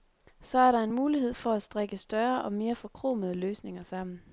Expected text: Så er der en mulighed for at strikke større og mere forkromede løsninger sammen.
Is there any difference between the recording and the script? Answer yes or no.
no